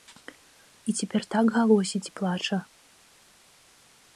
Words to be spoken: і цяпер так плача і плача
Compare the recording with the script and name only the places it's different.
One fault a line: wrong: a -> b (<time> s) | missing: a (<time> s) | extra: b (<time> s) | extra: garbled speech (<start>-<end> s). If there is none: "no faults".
wrong: плача -> галосіць (1.6 s)